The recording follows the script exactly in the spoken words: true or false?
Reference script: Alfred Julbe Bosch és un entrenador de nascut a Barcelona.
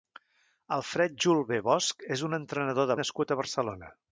true